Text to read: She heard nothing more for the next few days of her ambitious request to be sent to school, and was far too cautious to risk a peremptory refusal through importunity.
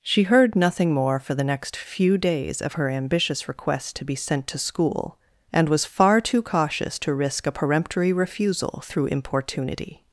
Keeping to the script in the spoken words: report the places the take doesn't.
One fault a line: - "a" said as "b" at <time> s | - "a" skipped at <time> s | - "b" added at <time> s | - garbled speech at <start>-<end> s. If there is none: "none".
none